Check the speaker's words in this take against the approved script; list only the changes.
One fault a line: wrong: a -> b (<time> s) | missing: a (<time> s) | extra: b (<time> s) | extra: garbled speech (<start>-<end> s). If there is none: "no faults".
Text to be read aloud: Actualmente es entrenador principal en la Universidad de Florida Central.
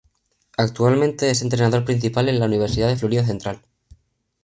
no faults